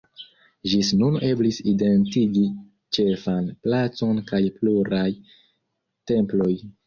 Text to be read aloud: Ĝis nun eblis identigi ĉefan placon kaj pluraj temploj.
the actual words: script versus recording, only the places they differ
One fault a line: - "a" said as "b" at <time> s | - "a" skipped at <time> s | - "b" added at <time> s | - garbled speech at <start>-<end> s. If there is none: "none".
none